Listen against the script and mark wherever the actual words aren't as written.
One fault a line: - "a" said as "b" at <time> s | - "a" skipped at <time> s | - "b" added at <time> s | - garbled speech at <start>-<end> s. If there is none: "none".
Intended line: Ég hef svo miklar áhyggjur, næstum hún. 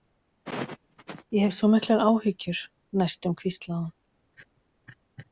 - "hvíslaði" added at 3.4 s